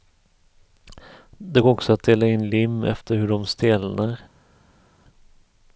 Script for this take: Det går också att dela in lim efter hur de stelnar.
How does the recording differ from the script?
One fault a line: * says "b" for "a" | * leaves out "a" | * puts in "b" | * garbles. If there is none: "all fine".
all fine